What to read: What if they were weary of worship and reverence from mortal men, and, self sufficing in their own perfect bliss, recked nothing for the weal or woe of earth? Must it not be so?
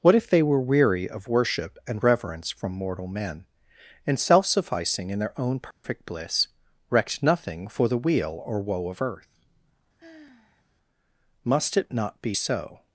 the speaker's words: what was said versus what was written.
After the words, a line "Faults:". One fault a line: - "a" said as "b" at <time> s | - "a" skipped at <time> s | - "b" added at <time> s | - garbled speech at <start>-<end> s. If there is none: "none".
What if they were weary of worship and reverence from mortal men, and, self sufficing in their own perfect bliss, recked nothing for the weal or woe of earth? Must it not be so?
Faults:
none